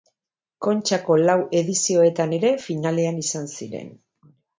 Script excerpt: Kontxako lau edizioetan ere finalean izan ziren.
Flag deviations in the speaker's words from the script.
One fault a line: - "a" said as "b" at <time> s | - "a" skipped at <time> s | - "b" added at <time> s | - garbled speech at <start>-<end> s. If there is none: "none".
none